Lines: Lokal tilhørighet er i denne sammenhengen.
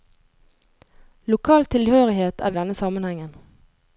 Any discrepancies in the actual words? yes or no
no